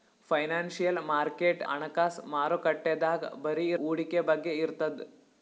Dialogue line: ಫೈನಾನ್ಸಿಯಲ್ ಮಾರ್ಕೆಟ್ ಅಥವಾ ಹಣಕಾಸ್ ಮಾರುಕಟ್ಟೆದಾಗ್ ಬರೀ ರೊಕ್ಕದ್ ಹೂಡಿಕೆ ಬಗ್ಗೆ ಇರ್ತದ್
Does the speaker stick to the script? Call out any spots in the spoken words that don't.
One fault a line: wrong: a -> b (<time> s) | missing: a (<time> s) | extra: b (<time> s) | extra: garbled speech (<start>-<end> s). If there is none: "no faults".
missing: ಅಥವಾ (1.6 s)
missing: ರೊಕ್ಕದ್ (3.7 s)